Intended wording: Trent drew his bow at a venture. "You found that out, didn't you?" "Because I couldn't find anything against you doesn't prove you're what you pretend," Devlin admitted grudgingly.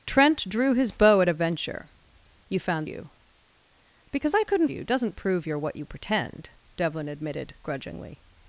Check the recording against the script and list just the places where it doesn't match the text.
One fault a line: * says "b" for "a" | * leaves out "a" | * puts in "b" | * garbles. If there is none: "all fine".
* leaves out "that out didn't"
* leaves out "find anything against"